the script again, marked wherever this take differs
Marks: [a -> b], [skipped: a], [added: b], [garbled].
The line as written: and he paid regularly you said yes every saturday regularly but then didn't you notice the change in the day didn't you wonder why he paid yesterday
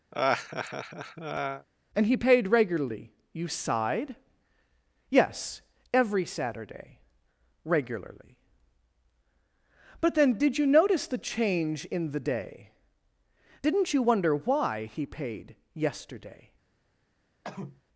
and he paid regularly you [said -> sighed] yes every saturday regularly but then [didn't -> did] you notice the change in the day didn't you wonder why he paid yesterday